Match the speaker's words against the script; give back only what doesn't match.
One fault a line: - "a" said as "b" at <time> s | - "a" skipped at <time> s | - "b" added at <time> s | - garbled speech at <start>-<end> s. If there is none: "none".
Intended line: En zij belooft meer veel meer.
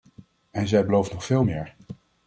- "meer" said as "nog" at 1.1 s